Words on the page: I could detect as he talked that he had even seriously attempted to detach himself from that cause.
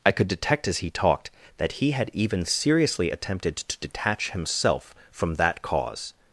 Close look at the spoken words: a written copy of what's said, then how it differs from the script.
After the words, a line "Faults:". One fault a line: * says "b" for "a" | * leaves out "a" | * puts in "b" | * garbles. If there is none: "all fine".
I could detect as he talked that he had even seriously attempted to detach himself from that cause.
Faults:
all fine